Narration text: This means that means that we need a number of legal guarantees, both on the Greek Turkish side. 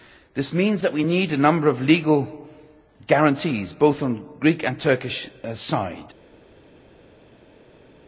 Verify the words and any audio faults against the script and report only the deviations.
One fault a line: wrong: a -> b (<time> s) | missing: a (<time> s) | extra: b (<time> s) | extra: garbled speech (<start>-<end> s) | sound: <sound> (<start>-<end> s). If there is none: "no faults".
missing: means that (0.9 s)
extra: and (4.6 s)